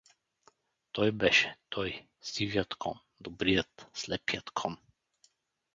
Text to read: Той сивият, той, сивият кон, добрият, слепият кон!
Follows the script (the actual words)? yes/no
no